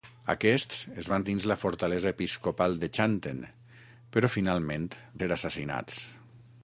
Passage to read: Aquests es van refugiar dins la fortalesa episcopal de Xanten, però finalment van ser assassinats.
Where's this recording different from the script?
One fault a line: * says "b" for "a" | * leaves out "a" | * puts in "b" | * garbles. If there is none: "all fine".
* leaves out "refugiar"
* leaves out "van"